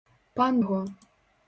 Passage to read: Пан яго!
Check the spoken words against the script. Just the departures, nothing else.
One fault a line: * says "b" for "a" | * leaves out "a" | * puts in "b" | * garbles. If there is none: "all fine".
all fine